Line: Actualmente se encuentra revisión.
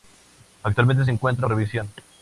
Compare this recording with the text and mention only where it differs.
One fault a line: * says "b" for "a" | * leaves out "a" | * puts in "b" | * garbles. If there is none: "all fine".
all fine